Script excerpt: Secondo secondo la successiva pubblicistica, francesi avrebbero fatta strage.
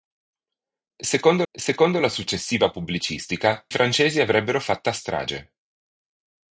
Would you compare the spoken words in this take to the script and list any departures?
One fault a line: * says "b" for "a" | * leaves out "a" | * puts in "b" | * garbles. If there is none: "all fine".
all fine